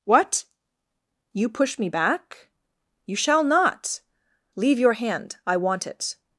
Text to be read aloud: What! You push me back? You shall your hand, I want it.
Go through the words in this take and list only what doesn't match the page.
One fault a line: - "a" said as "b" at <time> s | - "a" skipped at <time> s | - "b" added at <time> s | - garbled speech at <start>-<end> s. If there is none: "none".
- "not Leave" added at 3.4 s